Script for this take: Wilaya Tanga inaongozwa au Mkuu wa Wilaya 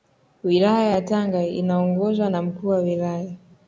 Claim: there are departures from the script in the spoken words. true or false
true